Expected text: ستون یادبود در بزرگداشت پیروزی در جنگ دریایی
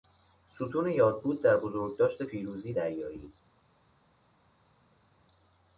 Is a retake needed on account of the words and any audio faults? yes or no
yes